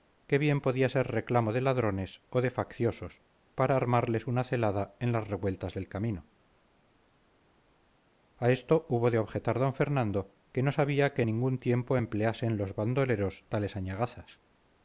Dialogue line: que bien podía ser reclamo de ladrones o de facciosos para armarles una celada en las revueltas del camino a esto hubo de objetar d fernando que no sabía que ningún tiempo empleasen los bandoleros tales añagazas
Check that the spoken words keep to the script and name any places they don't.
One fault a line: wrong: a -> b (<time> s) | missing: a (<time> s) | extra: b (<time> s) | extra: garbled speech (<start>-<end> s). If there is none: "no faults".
no faults